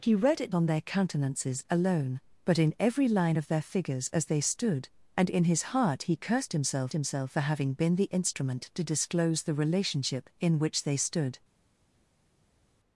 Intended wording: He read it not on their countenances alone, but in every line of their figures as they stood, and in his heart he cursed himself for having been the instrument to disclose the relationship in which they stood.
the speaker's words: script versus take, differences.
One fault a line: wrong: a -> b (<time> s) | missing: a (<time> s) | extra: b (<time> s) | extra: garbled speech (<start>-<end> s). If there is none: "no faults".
missing: not (0.5 s)
extra: himself (6.9 s)